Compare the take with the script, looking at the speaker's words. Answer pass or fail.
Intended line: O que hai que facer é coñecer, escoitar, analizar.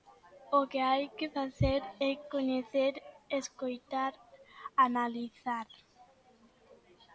pass